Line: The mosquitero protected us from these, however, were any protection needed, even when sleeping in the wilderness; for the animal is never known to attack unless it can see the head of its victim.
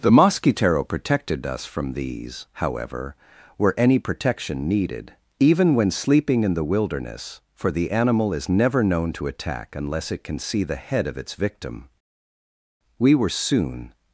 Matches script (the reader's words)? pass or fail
fail